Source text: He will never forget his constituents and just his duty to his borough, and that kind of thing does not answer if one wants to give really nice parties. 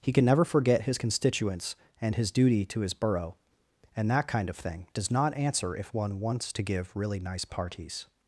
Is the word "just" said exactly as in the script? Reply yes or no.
no